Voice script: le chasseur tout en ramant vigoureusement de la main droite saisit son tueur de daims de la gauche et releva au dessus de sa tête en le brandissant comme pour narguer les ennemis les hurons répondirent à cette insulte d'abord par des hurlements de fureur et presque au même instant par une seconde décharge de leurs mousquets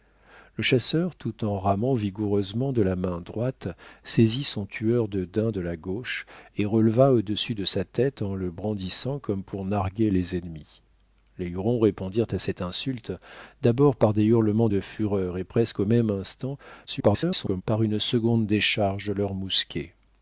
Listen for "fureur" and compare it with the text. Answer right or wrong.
right